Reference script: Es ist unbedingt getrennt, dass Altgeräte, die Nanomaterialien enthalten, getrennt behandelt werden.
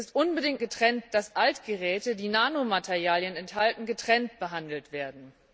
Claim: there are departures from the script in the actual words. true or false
false